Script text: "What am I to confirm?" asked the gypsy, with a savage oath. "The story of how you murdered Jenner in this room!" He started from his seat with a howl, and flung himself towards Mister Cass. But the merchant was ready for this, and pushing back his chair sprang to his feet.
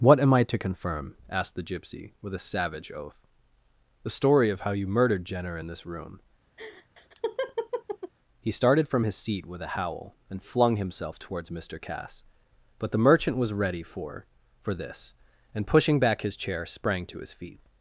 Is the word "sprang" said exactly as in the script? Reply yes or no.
yes